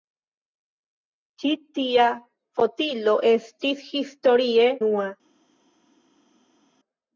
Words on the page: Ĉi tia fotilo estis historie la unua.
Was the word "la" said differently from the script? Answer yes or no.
yes